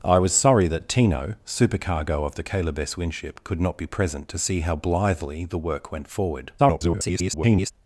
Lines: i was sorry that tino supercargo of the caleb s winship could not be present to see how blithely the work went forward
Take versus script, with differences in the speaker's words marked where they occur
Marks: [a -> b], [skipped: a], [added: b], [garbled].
i was sorry that tino supercargo of the caleb s winship could not be present to see how blithely the work went forward [garbled]